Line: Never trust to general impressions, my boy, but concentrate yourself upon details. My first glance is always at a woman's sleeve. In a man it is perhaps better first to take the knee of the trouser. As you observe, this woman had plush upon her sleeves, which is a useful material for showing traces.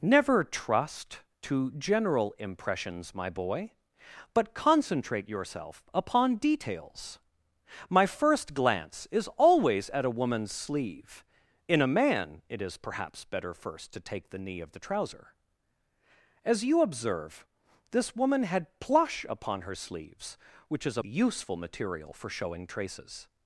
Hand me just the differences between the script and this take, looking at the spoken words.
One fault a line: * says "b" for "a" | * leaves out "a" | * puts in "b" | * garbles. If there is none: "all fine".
all fine